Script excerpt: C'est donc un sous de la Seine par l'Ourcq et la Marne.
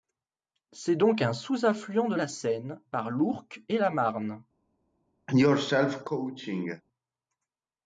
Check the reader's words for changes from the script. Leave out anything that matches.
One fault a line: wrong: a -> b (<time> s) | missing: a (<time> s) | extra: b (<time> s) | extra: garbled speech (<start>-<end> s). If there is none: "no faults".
extra: affluent (1.6 s)